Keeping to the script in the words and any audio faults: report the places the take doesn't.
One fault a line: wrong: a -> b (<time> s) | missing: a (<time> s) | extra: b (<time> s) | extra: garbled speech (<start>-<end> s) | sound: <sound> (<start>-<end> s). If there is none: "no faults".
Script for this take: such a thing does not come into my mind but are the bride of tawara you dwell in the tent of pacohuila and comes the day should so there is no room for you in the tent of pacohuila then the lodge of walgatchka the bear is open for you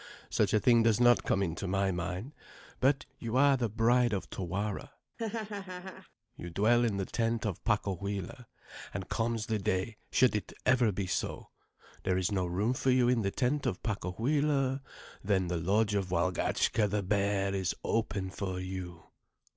extra: you (3.2 s)
sound: laugh (5.2-6.1 s)
extra: it ever be (10.4 s)